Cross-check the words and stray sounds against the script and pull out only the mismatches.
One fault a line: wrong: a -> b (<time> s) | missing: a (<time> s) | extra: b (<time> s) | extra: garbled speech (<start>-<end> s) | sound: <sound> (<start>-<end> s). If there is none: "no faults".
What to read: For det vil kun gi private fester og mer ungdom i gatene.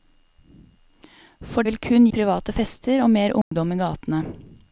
missing: det (1.6 s)
missing: gi (2.1 s)
sound: dropout (3.4-3.5 s)